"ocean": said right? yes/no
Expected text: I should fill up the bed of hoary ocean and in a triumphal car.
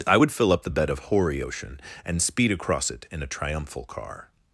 yes